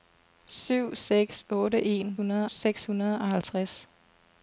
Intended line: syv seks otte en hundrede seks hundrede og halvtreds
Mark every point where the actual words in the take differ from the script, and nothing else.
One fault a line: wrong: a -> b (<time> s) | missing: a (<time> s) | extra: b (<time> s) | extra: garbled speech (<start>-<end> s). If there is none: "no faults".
no faults